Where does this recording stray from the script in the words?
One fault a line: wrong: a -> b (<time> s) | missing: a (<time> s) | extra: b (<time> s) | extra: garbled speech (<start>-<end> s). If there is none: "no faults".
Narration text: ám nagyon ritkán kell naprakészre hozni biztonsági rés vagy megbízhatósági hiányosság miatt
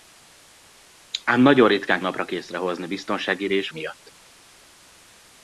missing: kell (2.0 s)
missing: vagy megbízhatósági hiányosság (3.7 s)